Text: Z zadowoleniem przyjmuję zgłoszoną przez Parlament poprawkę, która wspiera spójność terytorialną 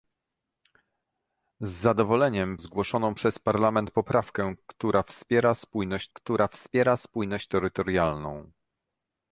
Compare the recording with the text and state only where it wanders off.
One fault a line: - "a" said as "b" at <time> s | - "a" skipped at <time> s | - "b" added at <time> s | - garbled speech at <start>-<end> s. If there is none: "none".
- "przyjmuję" skipped at 2.6 s
- "która wspiera spójność" added at 6.1 s